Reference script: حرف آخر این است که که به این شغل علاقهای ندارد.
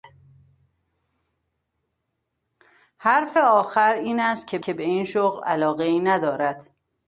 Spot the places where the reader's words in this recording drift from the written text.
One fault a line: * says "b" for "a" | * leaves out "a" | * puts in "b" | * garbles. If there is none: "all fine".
all fine